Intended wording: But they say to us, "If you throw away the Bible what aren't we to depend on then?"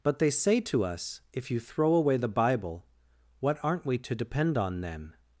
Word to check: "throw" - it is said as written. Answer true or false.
true